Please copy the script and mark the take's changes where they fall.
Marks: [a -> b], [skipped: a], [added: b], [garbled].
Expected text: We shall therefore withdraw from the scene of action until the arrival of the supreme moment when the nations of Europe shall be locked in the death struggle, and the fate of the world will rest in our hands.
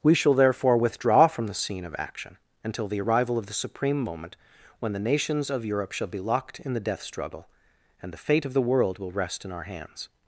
We shall therefore withdraw from the scene of action until the arrival of the supreme moment when the nations of Europe shall be locked in the death struggle, and the fate of the world will rest in our hands.